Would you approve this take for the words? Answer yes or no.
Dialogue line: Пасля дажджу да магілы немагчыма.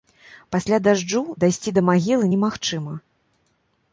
no